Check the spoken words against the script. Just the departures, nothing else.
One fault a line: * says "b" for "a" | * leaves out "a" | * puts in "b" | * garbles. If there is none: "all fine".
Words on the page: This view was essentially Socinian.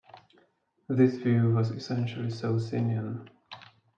all fine